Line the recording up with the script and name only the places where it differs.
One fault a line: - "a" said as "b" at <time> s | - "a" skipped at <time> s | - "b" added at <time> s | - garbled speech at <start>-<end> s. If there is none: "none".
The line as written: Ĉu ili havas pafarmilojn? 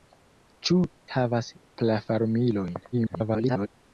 - "ili" skipped at 0.8 s
- garbled speech at 2.9-3.7 s